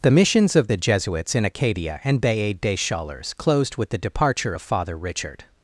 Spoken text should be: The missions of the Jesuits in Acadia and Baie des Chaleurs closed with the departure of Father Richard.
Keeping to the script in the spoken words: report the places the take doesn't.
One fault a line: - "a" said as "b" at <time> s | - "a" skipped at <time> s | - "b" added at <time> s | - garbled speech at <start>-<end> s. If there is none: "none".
none